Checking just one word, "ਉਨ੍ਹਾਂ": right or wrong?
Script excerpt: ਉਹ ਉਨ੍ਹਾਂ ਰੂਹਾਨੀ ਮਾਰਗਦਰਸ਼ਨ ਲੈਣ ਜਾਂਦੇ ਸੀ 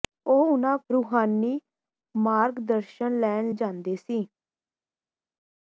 right